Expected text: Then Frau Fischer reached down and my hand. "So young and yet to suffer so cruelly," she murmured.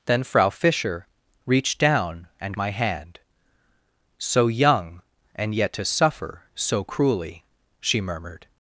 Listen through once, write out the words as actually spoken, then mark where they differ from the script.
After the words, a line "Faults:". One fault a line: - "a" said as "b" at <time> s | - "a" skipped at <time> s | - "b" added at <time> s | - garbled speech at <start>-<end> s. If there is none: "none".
Then Frau Fischer reached down and my hand. "So young and yet to suffer so cruelly," she murmured.
Faults:
none